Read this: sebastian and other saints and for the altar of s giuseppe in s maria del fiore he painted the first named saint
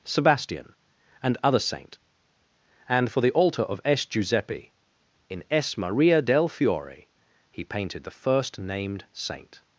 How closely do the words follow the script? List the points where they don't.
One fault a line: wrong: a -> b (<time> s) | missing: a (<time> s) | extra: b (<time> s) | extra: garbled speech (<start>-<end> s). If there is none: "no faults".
wrong: saints -> saint (1.6 s)